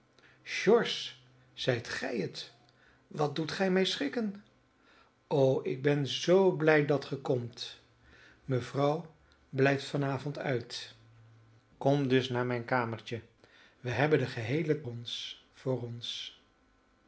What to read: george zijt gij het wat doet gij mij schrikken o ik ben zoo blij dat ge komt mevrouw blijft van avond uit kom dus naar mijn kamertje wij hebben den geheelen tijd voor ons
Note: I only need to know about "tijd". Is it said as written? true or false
false